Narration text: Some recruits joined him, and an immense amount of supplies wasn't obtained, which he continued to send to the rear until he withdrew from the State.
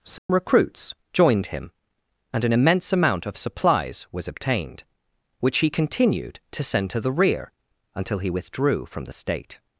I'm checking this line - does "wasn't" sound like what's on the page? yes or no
no